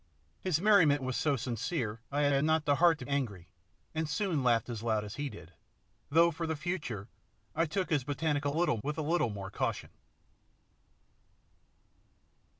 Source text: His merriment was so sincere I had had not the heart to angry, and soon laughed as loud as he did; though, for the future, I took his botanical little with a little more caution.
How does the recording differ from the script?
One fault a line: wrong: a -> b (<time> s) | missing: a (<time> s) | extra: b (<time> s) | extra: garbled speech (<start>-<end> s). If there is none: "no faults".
no faults